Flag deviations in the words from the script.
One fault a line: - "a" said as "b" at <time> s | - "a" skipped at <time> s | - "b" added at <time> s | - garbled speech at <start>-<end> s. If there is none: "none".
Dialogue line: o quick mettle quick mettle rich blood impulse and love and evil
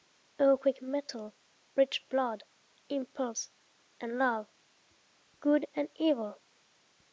- "quick mettle" skipped at 1.3 s
- "good" added at 5.4 s